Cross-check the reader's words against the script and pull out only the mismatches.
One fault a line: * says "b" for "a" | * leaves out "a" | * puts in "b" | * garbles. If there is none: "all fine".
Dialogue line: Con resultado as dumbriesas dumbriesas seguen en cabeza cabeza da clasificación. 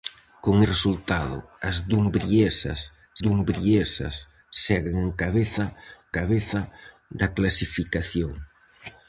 all fine